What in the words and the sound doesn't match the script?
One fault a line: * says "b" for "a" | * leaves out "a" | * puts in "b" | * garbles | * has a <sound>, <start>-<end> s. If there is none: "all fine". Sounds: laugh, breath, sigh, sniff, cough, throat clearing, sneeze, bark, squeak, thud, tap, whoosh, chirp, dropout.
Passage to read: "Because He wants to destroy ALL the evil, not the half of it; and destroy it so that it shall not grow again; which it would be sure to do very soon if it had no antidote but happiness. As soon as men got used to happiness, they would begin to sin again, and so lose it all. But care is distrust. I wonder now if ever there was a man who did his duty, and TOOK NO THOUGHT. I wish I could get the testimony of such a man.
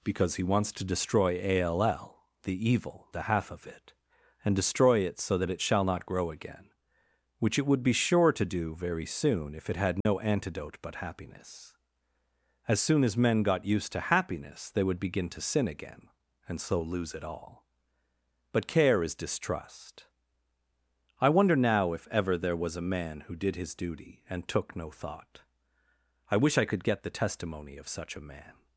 * leaves out "not"
* has a dropout, 10.0-10.1 s